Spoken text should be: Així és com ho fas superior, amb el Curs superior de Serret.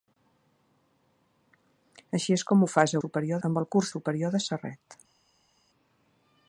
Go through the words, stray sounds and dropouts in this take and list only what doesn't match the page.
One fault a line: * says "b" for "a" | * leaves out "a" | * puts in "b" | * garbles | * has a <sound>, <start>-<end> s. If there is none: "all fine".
all fine